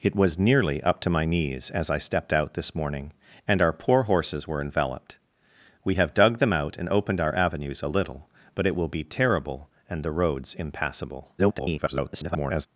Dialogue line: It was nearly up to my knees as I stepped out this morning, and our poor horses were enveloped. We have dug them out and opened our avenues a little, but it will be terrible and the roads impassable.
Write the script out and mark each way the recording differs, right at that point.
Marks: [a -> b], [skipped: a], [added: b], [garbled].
It was nearly up to my knees as I stepped out this morning, and our poor horses were enveloped. We have dug them out and opened our avenues a little, but it will be terrible and the roads impassable. [garbled]